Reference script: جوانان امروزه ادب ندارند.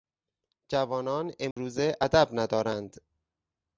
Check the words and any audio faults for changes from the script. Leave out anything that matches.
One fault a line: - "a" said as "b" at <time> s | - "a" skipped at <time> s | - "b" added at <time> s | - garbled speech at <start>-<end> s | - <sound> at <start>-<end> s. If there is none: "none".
- dropout at 1.5-1.6 s